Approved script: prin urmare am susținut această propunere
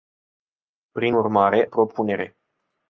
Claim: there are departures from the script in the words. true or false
true